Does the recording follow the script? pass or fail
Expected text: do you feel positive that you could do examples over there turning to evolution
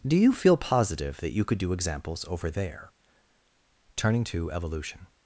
pass